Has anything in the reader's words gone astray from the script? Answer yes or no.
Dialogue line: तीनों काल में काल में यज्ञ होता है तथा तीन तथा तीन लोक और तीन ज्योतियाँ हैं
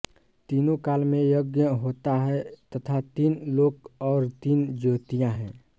yes